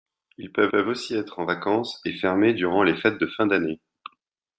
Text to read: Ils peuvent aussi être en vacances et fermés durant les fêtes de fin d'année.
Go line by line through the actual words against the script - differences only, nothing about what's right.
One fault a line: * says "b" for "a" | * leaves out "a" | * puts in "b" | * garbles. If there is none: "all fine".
* puts in "peuvent"